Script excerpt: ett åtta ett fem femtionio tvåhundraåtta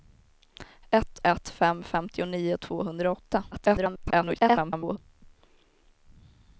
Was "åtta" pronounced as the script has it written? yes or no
no